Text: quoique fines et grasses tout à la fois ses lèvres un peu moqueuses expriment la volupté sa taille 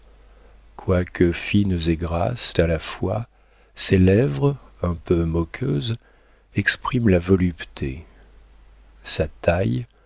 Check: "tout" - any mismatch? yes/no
yes